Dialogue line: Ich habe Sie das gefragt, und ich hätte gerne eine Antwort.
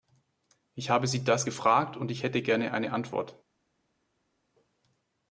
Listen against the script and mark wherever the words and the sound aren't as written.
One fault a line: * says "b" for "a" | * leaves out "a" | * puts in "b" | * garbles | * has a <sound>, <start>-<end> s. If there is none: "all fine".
all fine